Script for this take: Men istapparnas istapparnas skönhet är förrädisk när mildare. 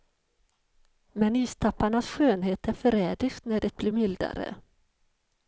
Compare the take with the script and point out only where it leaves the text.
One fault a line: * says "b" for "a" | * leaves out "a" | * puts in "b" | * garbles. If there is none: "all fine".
* leaves out "istapparnas"
* puts in "det blir"